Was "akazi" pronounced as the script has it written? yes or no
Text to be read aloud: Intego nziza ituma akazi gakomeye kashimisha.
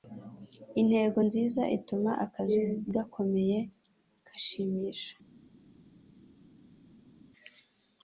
yes